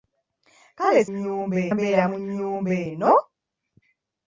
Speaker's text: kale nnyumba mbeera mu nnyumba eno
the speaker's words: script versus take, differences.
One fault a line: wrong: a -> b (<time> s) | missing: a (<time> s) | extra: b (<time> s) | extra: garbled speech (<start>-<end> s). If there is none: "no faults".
no faults